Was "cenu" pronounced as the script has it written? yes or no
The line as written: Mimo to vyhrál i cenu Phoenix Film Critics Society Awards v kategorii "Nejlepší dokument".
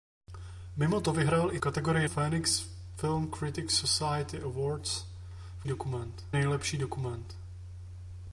no